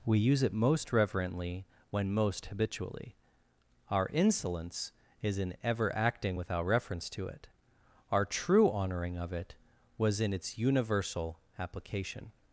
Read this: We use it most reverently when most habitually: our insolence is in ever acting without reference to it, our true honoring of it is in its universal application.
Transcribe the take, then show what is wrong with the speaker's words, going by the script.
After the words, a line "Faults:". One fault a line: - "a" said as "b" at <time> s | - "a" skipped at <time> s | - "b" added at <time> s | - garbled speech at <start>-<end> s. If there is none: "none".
We use it most reverently when most habitually: our insolence is in ever acting without reference to it, our true honoring of it was in its universal application.
Faults:
- "is" said as "was" at 10.0 s